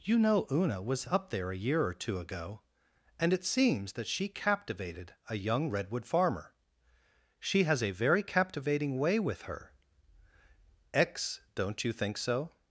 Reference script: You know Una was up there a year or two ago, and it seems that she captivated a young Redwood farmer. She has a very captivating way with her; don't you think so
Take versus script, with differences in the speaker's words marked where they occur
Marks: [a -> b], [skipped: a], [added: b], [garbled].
You know Una was up there a year or two ago, and it seems that she captivated a young Redwood farmer. She has a very captivating way with her; [added: x] don't you think so